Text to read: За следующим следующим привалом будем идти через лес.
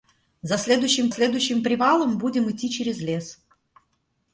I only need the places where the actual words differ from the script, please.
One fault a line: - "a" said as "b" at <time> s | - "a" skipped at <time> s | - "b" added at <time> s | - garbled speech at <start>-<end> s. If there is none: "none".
none